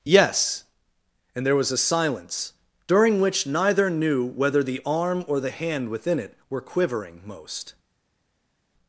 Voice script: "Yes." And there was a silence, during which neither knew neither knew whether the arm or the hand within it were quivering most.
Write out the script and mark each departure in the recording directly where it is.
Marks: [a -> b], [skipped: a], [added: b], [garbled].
"Yes." And there was a silence, during which neither knew [skipped: neither knew] whether the arm or the hand within it were quivering most.